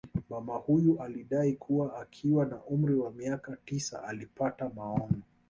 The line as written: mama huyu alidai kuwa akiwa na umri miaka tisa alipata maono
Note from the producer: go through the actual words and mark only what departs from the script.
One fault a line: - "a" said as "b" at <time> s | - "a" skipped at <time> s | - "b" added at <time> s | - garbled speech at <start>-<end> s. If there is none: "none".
- "wa" added at 3.0 s